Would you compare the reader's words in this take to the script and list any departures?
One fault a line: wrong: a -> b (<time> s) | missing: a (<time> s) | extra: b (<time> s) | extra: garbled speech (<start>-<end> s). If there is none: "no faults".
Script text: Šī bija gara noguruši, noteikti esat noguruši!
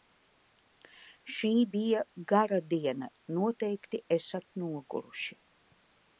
wrong: noguruši -> diena (2.7 s)